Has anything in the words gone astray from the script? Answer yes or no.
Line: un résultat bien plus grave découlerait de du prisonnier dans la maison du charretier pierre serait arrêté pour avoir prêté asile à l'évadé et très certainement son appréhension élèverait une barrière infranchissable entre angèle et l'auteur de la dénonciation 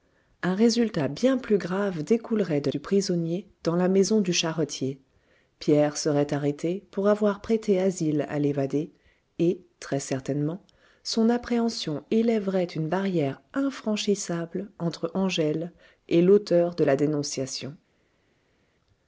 no